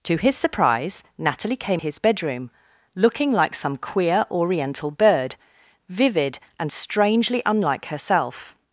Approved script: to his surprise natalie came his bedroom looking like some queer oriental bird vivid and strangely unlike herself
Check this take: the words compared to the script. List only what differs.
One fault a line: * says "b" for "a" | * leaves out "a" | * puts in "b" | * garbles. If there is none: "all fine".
all fine